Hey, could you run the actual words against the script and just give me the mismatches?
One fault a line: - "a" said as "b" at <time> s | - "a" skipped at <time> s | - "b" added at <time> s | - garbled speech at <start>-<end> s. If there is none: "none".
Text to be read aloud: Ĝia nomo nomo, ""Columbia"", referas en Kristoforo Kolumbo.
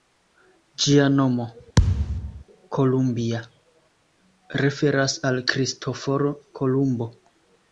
- "nomo" skipped at 1.4 s
- "en" said as "al" at 5.3 s